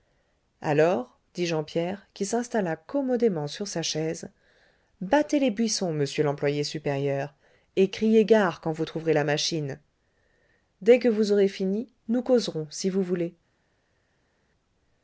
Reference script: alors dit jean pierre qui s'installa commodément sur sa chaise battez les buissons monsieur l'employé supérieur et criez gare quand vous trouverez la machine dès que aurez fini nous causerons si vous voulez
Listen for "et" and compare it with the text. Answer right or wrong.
right